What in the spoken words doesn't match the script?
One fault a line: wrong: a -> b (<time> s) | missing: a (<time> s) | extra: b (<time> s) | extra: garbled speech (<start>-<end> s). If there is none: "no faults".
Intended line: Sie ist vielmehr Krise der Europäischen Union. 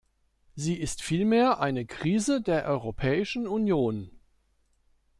extra: eine (1.6 s)